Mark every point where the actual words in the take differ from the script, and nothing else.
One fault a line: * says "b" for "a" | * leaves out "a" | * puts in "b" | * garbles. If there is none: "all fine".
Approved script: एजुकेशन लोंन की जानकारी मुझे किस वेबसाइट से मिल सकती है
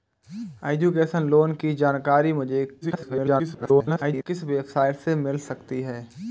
* garbles